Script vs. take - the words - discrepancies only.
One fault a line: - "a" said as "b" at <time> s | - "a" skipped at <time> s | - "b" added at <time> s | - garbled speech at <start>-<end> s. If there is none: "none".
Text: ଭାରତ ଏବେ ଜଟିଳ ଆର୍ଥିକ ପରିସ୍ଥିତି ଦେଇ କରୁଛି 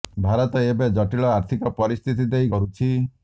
none